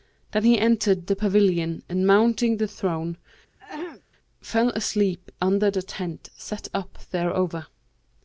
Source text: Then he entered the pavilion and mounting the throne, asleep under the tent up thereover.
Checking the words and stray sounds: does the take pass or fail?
fail